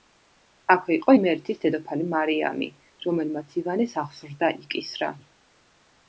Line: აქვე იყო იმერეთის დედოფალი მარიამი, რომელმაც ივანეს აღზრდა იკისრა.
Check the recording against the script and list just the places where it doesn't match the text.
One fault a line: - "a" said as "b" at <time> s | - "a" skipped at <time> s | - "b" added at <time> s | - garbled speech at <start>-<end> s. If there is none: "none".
none